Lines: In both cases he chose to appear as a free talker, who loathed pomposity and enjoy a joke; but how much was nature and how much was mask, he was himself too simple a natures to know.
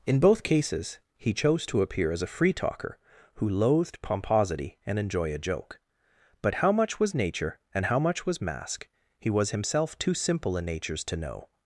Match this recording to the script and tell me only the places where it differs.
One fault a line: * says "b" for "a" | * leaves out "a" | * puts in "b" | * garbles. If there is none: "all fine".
all fine